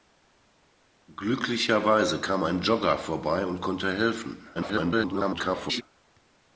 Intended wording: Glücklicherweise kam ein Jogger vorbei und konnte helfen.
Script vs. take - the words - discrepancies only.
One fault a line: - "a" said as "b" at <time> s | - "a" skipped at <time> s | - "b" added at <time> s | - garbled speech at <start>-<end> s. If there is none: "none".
- garbled speech at 4.5-5.8 s